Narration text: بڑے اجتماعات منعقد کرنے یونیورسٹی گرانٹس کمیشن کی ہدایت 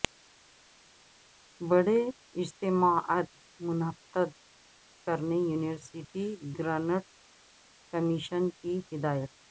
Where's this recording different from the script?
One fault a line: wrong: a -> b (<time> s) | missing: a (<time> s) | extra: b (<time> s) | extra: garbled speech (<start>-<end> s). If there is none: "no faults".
no faults